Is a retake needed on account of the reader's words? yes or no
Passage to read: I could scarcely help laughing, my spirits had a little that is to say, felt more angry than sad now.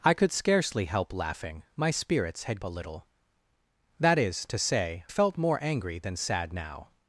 no